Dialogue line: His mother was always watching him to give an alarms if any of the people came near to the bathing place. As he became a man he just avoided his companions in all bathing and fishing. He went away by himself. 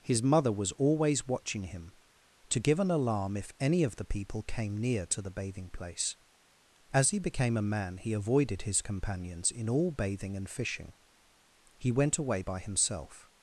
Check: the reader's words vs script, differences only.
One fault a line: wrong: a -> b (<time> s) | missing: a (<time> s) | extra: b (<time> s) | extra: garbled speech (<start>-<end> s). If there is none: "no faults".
wrong: alarms -> alarm (2.9 s)
missing: just (8.1 s)